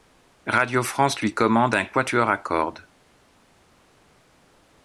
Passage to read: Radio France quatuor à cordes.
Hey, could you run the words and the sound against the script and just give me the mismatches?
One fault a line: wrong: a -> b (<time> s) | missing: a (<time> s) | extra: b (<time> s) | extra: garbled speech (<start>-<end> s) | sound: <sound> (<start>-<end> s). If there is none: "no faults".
extra: lui commande un (1.2 s)